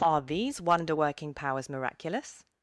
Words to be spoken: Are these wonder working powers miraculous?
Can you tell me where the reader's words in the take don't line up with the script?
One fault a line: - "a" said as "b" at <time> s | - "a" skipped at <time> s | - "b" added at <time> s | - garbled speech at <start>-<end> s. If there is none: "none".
none